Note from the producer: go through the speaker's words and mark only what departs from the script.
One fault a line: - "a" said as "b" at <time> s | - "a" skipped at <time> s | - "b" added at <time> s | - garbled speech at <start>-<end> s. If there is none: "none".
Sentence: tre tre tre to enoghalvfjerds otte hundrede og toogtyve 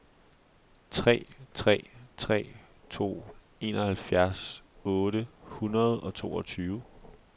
none